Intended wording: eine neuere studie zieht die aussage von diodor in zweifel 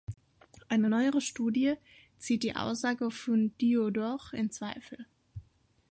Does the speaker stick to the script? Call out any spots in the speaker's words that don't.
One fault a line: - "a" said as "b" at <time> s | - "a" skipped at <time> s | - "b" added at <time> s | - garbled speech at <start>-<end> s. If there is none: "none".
none